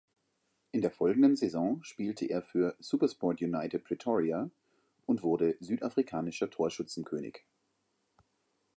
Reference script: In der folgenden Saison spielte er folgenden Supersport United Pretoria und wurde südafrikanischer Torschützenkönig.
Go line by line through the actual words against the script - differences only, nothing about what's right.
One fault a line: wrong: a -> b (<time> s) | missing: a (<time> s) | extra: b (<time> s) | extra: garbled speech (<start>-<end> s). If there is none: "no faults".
wrong: folgenden -> für (2.4 s)